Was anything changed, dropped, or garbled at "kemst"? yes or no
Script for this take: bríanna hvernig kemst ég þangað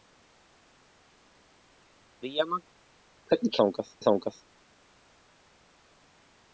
yes